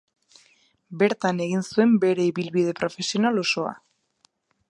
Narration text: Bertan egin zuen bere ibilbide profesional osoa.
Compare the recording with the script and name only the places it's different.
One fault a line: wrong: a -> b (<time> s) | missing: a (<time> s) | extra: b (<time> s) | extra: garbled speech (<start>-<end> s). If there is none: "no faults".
no faults